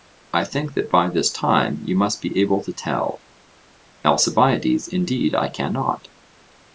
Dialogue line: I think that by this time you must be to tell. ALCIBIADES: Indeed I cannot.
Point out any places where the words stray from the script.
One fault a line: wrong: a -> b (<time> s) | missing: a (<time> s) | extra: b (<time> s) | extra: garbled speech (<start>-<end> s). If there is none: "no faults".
extra: able (2.4 s)